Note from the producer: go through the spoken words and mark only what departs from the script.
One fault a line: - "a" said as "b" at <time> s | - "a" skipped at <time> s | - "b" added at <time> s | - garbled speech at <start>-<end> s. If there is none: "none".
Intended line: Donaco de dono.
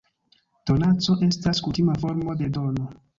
- "estas kutima formo" added at 1.3 s